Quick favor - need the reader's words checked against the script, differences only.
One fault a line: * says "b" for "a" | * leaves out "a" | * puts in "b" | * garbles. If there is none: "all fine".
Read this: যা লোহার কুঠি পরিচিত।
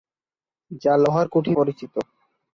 all fine